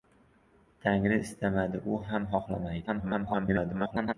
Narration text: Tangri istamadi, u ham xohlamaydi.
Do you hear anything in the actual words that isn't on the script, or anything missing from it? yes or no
yes